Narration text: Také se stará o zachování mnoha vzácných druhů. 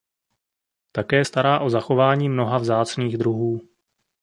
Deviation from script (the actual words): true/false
true